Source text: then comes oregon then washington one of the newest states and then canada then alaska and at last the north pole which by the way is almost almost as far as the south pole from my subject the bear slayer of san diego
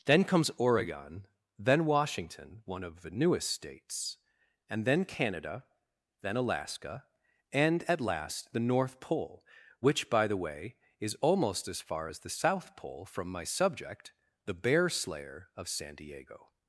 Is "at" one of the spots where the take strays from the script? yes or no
no